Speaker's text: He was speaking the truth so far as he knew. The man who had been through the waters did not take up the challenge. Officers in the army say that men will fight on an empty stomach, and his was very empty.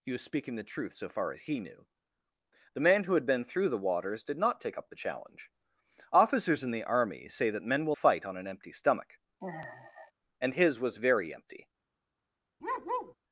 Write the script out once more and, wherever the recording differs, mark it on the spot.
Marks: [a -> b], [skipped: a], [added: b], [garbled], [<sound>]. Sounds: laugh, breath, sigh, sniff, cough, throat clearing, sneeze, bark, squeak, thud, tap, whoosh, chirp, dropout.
He was speaking the truth so far as he knew. The man who had been through the waters did not take up the challenge. Officers in the army say that men will fight on an empty stomach, [sigh] and his was very empty. [bark]